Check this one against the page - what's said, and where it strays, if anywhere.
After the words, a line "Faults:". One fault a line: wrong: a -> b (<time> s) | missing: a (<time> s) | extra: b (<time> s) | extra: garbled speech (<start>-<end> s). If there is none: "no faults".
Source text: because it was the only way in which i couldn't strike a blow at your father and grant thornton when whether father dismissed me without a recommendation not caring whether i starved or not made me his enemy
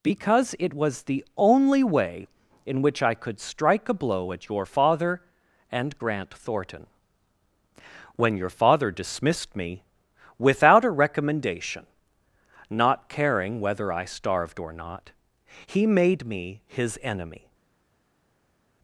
because it was the only way in which i could strike a blow at your father and grant thornton when your father dismissed me without a recommendation not caring whether i starved or not he made me his enemy
Faults:
wrong: couldn't -> could (3.1 s)
wrong: whether -> your (8.4 s)
extra: he (15.7 s)